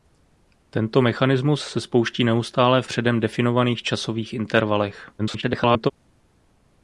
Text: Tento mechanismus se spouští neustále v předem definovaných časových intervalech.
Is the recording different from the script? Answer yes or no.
yes